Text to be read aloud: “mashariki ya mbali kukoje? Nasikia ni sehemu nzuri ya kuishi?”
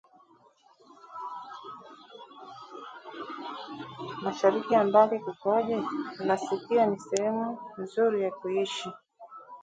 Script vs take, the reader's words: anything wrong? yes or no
no